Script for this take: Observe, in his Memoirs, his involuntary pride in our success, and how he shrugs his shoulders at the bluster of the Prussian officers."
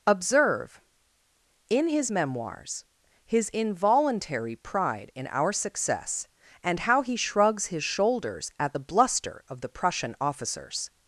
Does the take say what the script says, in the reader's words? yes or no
yes